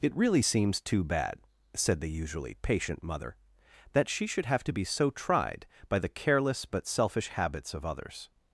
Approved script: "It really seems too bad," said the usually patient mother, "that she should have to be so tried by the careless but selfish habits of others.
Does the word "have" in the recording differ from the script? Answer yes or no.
no